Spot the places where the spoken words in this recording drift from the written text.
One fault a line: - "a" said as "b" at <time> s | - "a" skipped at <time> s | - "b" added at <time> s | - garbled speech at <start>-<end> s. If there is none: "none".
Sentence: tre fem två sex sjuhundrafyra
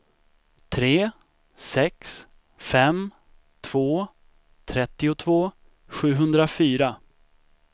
- "sex" added at 1.6 s
- "sex" said as "trettiotvå" at 4.7 s